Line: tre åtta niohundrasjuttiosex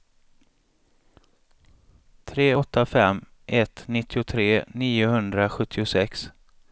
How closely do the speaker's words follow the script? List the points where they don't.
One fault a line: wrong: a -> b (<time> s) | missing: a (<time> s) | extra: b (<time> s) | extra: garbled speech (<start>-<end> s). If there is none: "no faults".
extra: fem ett nittiotre (2.9 s)